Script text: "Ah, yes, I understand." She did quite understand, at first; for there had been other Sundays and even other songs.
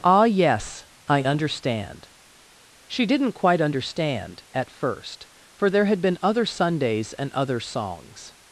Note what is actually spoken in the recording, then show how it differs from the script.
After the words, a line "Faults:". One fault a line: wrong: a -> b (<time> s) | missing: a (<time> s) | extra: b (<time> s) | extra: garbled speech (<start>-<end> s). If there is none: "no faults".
"Ah, yes, I understand." She didn't quite understand, at first; for there had been other Sundays and other songs.
Faults:
wrong: did -> didn't (3.0 s)
missing: even (7.3 s)